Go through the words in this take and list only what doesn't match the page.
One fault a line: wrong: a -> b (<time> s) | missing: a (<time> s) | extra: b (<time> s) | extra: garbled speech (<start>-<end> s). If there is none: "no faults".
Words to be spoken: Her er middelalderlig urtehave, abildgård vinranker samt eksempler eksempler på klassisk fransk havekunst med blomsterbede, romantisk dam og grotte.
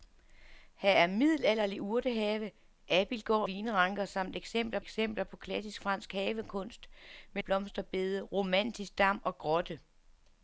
no faults